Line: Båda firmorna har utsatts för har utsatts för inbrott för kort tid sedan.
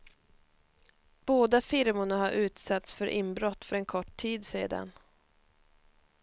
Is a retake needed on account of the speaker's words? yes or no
yes